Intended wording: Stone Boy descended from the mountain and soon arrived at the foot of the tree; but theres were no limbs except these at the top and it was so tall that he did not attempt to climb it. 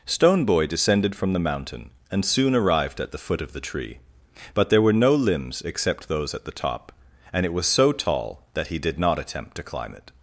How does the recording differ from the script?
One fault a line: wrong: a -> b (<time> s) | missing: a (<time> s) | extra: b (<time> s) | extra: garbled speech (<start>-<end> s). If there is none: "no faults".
wrong: theres -> there (4.7 s)
wrong: these -> those (6.1 s)